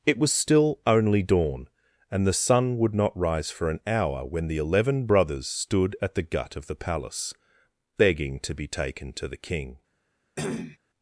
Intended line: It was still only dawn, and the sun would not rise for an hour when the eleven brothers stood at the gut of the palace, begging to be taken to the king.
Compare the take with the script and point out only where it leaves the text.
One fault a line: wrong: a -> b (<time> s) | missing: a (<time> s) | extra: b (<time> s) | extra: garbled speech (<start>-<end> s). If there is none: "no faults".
no faults